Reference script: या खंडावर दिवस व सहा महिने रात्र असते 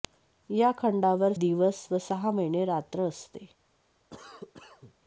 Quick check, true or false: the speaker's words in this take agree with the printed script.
true